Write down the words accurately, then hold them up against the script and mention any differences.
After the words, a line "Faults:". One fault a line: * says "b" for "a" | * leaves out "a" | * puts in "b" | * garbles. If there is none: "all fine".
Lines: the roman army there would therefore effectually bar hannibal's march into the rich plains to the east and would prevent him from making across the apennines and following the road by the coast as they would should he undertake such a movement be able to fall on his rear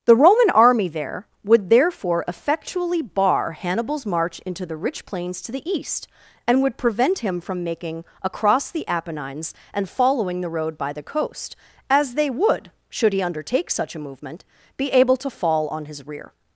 the roman army there would therefore effectually bar hannibal's march into the rich plains to the east and would prevent him from making across the apennines and following the road by the coast as they would should he undertake such a movement be able to fall on his rear
Faults:
all fine